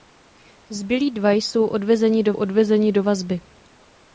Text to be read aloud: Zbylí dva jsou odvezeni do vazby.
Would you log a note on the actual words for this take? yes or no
yes